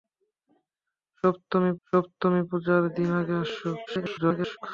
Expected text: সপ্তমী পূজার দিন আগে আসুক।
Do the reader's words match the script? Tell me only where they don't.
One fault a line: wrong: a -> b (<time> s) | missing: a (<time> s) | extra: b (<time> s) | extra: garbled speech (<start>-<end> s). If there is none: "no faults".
extra: সপ্তমী (1.9 s)
extra: garbled speech (3.9-4.6 s)